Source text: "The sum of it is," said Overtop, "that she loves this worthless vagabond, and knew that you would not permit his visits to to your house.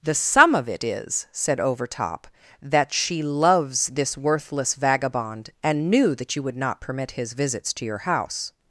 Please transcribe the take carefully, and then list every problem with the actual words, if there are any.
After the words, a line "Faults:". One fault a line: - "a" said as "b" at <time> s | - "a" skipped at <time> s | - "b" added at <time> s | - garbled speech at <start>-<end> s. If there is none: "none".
"The sum of it is," said Overtop, "that she loves this worthless vagabond, and knew that you would not permit his visits to your house.
Faults:
- "to" skipped at 7.8 s